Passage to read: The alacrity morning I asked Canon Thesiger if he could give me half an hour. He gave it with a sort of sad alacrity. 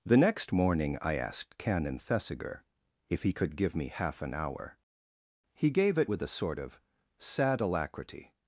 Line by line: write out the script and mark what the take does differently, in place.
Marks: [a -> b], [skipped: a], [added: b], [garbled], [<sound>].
The [alacrity -> next] morning I asked Canon Thesiger if he could give me half an hour. He gave it with a sort of sad alacrity.